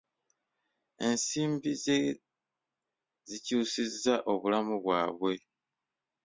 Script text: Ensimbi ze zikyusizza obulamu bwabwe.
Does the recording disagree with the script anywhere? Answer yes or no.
no